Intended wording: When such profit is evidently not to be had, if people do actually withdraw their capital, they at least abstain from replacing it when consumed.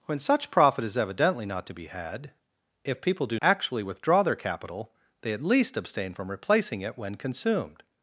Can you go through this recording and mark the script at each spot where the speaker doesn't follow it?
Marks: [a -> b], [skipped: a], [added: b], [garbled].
When such profit is evidently not to be had, if people do actually withdraw their capital, they at least abstain from replacing it when consumed.